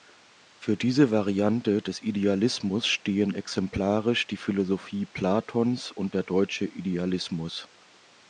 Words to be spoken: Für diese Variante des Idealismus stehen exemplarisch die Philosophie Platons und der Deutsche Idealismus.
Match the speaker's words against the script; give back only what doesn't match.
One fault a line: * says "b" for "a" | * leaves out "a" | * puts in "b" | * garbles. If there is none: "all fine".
all fine